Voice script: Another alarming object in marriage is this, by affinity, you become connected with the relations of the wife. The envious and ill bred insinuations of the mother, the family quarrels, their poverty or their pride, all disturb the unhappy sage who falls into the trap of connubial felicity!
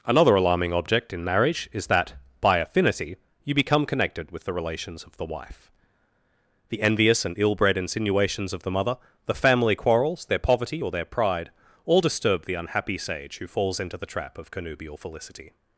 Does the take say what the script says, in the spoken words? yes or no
no